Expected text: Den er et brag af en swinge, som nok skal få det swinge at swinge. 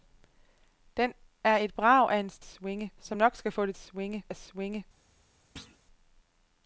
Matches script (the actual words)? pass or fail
pass